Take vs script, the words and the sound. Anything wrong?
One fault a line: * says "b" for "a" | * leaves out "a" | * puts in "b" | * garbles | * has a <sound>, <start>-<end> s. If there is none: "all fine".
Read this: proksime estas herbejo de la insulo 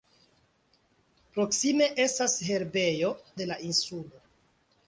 all fine